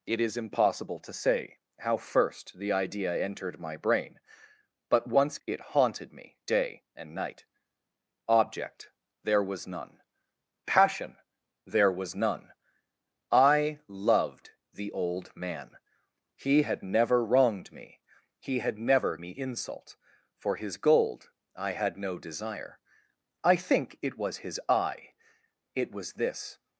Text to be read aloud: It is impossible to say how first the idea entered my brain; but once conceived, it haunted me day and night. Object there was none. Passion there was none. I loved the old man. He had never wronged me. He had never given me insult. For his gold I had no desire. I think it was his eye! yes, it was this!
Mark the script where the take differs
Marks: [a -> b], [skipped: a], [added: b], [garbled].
It is impossible to say how first the idea entered my brain; but once [skipped: conceived,] it haunted me day and night. Object there was none. Passion there was none. I loved the old man. He had never wronged me. He had never [skipped: given] me insult. For his gold I had no desire. I think it was his eye! [skipped: yes,] it was this!